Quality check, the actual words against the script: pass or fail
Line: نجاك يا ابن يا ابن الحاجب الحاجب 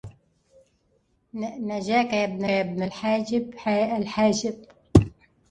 pass